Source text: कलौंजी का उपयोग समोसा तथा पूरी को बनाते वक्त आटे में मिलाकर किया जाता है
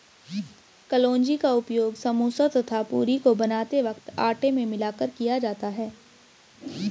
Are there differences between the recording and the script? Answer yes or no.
no